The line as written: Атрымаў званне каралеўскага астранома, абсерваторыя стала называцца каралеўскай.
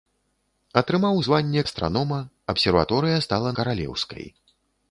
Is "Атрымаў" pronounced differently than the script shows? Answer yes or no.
no